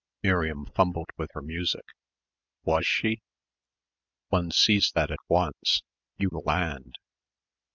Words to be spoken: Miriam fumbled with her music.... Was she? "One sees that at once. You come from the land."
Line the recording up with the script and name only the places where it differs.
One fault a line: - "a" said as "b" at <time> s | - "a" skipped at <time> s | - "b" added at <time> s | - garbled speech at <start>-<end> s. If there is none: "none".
- "come from" skipped at 6.3 s